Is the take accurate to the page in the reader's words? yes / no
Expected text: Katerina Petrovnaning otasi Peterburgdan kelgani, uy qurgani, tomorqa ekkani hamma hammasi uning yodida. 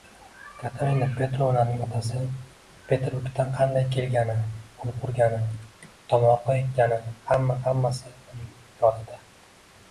no